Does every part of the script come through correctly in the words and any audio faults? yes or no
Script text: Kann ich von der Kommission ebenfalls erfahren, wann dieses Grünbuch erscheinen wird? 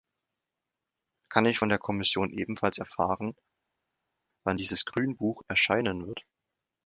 yes